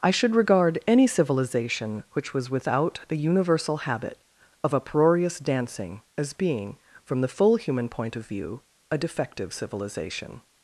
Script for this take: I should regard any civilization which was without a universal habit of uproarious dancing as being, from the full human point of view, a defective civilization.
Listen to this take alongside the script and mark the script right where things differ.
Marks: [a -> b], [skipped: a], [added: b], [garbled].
I should regard any civilization which was without [a -> the] universal habit of uproarious dancing as being, from the full human point of view, a defective civilization.